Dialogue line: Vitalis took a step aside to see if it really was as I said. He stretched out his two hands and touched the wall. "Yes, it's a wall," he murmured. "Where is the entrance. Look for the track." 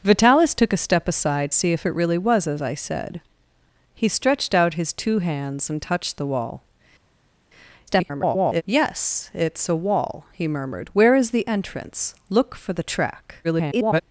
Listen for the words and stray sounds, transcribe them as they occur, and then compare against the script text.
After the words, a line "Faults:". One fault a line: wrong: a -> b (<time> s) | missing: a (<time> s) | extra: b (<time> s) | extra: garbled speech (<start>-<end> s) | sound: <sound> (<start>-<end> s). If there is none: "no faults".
Vitalis took a step aside see if it really was as I said. He stretched out his two hands and touched the wall. [garbled] "Yes, it's a wall," he murmured. "Where is the entrance. Look for the track." [garbled]
Faults:
missing: to (1.5 s)
extra: garbled speech (7.9-8.6 s)
extra: garbled speech (13.4-14.0 s)